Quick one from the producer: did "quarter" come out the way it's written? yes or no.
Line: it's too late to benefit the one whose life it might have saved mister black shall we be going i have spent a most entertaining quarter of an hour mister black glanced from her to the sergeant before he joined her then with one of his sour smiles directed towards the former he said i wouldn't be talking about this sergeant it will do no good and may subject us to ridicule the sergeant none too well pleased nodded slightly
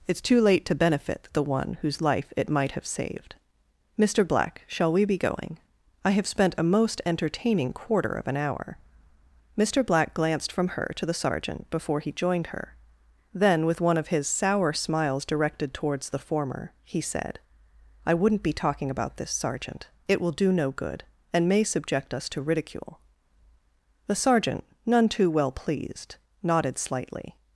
yes